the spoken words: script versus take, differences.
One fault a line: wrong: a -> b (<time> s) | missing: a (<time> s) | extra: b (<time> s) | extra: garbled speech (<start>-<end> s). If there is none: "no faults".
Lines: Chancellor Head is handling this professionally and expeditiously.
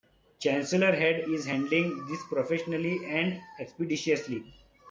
no faults